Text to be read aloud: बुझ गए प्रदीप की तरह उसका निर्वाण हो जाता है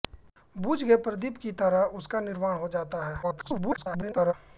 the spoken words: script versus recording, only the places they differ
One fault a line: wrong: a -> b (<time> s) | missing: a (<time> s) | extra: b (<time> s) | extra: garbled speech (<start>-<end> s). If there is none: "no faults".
extra: garbled speech (3.2-4.3 s)